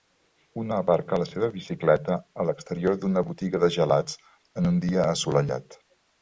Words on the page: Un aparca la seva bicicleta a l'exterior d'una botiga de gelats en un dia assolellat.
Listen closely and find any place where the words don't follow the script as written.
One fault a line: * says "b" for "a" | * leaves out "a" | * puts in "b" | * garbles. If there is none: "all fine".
all fine